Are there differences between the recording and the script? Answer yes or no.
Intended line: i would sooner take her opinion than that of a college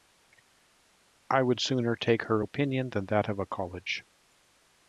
no